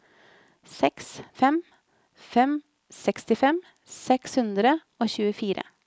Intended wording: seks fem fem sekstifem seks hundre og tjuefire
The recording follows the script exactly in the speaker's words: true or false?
true